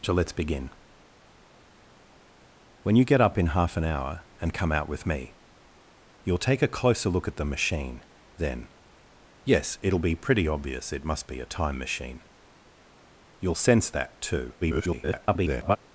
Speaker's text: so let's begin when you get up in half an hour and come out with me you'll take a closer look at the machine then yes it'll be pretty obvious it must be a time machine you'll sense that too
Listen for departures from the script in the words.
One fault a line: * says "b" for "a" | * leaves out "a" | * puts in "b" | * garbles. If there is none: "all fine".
* garbles